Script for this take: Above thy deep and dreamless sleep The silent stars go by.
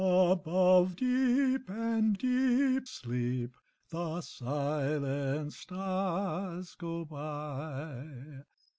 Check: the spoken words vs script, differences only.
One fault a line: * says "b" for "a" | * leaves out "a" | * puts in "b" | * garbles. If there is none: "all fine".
* leaves out "thy"
* says "deep" for "dreamless"